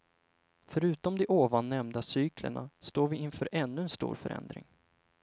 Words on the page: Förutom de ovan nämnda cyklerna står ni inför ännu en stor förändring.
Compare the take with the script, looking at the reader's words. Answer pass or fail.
fail